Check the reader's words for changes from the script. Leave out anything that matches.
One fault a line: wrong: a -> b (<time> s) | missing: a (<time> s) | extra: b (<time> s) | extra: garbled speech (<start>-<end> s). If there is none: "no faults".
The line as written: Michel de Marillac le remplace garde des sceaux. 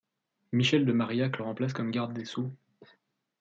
extra: comme (1.7 s)